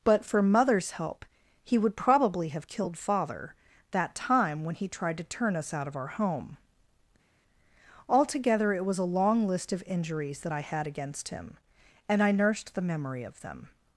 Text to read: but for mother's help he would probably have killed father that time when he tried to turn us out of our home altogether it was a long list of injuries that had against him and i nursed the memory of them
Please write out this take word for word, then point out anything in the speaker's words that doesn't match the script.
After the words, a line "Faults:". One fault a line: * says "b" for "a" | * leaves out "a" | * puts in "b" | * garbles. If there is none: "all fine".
but for mother's help he would probably have killed father that time when he tried to turn us out of our home altogether it was a long list of injuries that i had against him and i nursed the memory of them
Faults:
* puts in "i"